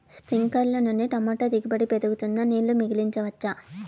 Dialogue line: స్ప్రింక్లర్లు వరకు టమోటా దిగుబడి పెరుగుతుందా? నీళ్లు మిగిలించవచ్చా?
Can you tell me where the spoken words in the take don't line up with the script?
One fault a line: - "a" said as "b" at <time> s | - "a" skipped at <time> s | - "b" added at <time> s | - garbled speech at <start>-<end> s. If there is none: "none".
- "వరకు" said as "నుండి" at 0.8 s